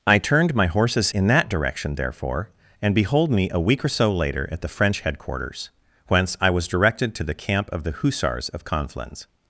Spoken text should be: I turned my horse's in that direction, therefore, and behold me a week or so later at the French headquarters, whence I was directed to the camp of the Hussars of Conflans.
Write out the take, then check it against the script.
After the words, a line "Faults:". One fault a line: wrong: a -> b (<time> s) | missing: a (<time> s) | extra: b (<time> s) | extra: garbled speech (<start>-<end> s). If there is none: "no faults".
I turned my horse's in that direction, therefore, and behold me a week or so later at the French headquarters, whence I was directed to the camp of the Hussars of Conflans.
Faults:
no faults